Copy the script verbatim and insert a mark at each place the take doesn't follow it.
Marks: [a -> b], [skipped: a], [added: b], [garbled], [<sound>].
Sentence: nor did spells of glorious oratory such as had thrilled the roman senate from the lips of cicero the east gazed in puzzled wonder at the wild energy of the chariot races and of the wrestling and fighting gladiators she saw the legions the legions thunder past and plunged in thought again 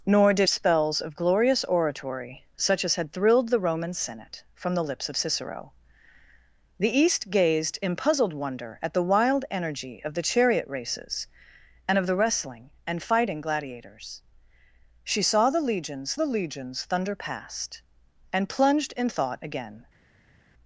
nor did spells of glorious oratory such as had thrilled the roman senate from the lips of cicero the east gazed in puzzled wonder at the wild energy of the chariot races and of the wrestling and fighting gladiators she saw the legions the legions thunder past and plunged in thought again